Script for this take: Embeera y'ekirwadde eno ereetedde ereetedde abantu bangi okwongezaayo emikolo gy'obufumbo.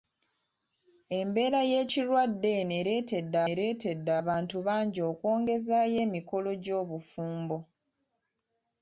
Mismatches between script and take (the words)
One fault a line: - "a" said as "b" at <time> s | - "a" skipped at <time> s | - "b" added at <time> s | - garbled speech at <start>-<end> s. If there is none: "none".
none